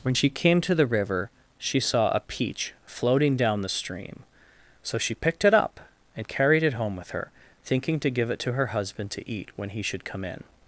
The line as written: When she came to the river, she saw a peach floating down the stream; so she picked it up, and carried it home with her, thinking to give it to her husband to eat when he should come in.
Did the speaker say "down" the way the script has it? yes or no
yes